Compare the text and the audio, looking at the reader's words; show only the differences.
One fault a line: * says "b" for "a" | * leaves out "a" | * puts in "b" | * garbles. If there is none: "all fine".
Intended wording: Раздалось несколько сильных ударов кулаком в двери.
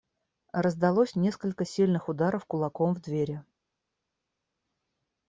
all fine